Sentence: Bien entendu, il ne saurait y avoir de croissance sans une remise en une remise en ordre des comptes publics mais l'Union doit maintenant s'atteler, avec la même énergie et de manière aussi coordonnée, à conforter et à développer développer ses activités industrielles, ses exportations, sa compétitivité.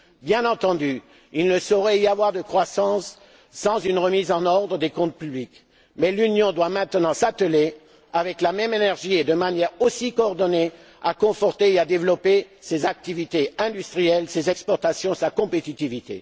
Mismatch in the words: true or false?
true